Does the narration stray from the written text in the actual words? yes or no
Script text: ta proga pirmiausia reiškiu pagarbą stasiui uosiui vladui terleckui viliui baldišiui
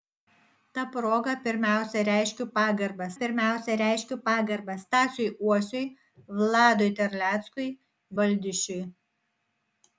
yes